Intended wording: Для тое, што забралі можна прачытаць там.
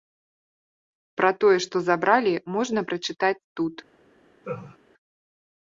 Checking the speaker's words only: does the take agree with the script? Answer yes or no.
no